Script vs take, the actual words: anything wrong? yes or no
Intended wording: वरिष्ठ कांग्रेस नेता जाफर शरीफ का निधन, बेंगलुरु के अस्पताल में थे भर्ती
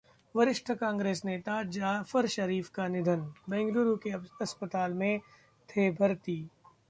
no